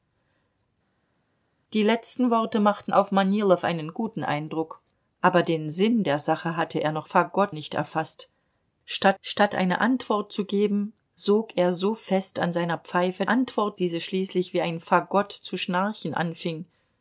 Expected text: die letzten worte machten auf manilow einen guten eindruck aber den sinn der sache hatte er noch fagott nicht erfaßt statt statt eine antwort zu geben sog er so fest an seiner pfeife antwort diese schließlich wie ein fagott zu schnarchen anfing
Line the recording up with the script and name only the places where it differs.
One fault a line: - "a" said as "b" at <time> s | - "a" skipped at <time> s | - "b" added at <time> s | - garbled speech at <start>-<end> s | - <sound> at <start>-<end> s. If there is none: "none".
none